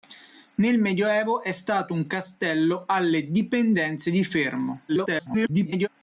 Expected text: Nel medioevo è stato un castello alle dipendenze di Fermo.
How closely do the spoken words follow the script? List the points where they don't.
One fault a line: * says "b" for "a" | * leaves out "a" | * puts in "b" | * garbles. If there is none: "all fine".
* garbles